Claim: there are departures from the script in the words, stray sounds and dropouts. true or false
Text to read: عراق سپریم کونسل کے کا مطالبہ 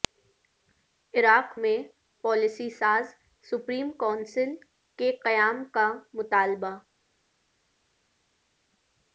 true